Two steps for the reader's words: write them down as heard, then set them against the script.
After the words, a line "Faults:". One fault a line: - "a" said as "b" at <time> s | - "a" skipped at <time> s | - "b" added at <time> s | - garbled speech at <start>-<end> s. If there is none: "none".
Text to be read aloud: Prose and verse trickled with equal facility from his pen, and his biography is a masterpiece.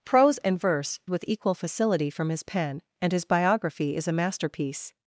Prose and verse with equal facility from his pen, and his biography is a masterpiece.
Faults:
- "trickled" skipped at 1.0 s